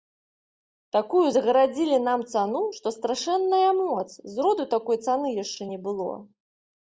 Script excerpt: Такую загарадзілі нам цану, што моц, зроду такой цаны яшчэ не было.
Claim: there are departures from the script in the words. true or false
true